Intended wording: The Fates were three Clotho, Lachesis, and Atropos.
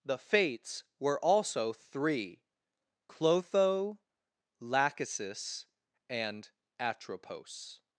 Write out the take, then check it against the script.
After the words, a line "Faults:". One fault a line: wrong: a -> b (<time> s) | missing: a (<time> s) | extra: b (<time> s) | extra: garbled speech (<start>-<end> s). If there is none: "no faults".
The Fates were also three Clotho, Lachesis, and Atropos.
Faults:
extra: also (1.2 s)